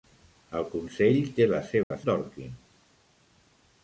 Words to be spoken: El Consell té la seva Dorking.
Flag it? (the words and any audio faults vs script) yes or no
yes